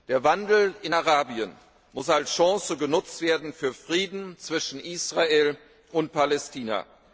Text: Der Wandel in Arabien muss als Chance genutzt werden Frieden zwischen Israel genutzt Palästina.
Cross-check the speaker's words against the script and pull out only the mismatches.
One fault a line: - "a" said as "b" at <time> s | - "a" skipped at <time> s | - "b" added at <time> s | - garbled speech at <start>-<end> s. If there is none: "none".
- "für" added at 3.5 s
- "genutzt" said as "und" at 5.9 s